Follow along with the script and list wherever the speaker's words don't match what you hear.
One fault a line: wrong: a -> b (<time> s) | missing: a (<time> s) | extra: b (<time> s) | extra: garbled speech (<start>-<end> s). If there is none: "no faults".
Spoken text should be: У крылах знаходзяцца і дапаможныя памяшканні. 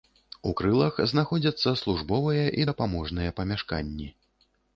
extra: службовыя (1.8 s)